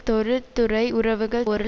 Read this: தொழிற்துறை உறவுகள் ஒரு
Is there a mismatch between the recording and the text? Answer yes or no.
no